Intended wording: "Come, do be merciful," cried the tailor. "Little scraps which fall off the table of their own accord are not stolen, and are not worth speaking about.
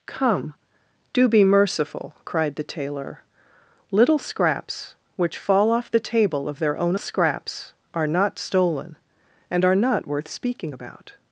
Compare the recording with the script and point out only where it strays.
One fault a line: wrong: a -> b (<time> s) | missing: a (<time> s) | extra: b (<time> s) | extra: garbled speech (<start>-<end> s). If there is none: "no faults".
wrong: accord -> scraps (7.0 s)